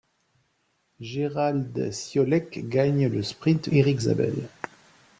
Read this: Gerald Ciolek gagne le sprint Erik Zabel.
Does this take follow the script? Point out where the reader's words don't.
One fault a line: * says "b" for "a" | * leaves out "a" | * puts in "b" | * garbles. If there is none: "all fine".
all fine